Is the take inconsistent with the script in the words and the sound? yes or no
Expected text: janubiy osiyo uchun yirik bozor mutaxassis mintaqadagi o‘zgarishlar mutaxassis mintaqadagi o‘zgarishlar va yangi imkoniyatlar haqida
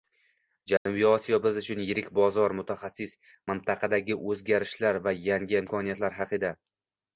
yes